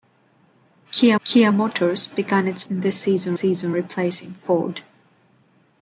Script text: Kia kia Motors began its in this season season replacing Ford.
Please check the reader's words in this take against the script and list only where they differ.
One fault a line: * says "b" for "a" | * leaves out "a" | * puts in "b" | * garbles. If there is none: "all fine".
all fine